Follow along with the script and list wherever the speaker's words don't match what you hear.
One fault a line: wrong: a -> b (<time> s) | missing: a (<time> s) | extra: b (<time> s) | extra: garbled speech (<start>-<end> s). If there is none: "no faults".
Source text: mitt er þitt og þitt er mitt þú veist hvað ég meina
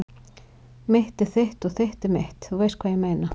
no faults